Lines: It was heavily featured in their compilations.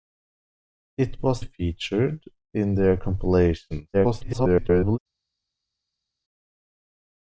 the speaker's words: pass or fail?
fail